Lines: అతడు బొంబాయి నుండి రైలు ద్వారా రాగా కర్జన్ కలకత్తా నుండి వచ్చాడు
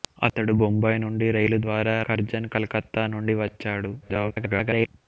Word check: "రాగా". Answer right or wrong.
wrong